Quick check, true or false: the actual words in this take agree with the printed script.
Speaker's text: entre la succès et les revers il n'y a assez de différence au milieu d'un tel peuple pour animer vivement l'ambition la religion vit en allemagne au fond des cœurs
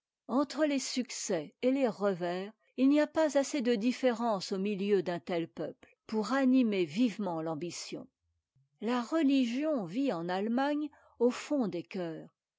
false